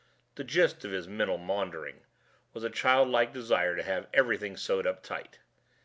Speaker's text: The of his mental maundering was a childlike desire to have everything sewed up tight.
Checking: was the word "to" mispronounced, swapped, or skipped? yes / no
no